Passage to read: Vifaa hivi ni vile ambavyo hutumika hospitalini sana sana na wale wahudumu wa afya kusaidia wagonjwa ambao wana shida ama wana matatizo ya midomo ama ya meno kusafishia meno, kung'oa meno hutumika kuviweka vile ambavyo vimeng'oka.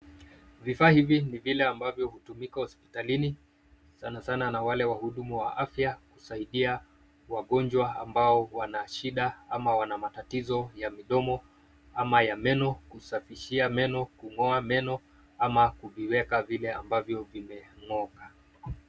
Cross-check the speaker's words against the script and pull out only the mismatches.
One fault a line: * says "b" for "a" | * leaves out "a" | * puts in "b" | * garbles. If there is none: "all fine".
* says "ama" for "hutumika"